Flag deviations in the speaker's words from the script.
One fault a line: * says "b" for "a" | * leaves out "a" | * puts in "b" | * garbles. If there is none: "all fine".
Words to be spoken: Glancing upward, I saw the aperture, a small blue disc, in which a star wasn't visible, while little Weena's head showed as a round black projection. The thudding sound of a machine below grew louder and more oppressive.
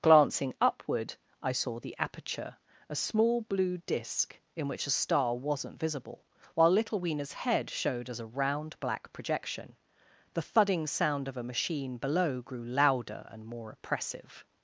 all fine